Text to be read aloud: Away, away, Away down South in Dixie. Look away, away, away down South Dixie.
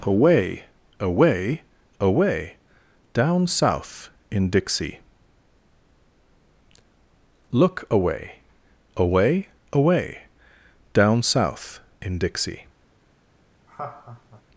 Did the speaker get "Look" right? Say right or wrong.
right